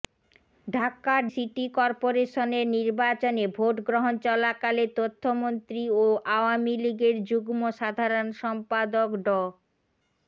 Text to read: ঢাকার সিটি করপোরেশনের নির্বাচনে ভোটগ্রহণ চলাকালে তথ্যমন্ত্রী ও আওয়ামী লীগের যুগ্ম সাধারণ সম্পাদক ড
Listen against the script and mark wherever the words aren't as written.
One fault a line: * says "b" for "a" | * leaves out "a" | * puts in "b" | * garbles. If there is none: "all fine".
all fine